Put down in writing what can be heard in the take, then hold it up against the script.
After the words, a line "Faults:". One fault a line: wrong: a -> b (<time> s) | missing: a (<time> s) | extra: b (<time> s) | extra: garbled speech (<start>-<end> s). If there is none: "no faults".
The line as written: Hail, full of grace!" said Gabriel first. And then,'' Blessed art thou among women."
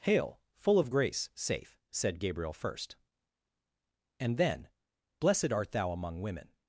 Hail, full of grace!" safe said Gabriel first. And then,'' Blessed art thou among women."
Faults:
extra: safe (1.3 s)